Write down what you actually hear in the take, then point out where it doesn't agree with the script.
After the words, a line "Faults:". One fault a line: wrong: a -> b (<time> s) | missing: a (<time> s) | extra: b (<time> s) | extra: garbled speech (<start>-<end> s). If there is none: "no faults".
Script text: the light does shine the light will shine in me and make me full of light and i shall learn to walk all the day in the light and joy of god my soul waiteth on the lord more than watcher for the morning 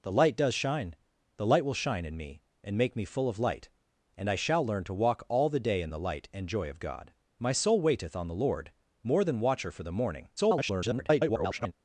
the light does shine the light will shine in me and make me full of light and i shall learn to walk all the day in the light and joy of god my soul waiteth on the lord more than watcher for the morning [garbled]
Faults:
extra: garbled speech (10.4-11.7 s)